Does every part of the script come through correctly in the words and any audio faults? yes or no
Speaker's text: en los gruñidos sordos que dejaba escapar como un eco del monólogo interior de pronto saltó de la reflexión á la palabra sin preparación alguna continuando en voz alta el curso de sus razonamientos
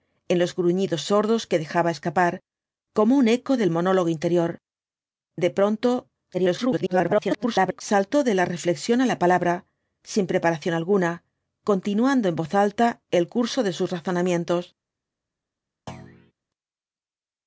no